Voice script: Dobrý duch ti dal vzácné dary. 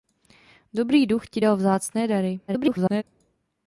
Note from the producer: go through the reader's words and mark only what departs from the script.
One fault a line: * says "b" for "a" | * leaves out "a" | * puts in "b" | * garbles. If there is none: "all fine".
* garbles